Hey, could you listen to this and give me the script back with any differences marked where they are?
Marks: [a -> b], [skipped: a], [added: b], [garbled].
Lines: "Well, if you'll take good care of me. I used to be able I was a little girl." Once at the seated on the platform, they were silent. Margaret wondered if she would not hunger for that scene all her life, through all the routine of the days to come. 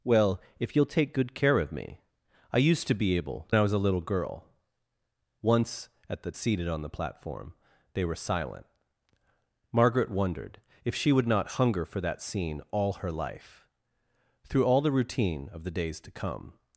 "Well, if you'll take good care of me. I used to be able I was a little girl." Once at the seated on the platform, they were silent. Margaret wondered if she would not hunger for that scene all her life, through all the routine of the days to come.